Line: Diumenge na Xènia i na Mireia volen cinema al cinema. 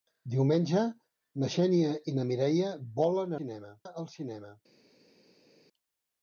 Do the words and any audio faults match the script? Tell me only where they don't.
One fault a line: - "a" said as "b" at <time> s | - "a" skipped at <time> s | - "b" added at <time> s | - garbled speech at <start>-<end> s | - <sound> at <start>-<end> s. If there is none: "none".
none